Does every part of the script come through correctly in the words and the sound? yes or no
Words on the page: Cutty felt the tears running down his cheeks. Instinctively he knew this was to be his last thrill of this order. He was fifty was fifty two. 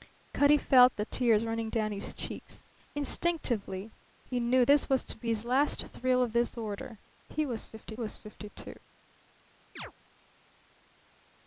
no